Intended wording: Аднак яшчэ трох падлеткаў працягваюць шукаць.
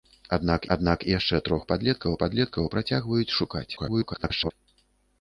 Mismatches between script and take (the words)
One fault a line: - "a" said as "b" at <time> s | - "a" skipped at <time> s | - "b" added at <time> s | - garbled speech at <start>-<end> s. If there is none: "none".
- "аднак" added at 0.8 s
- "падлеткаў" added at 2.2 s
- garbled speech at 3.8-4.5 s